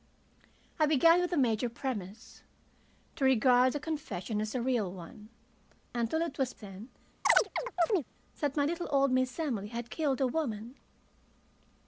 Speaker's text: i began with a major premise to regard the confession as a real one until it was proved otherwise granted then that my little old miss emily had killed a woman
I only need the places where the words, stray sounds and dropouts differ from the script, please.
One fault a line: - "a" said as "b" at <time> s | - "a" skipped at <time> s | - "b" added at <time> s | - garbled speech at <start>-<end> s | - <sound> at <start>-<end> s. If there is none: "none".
- "proved otherwise granted" skipped at 6.5 s
- chirp at 7.2-8.1 s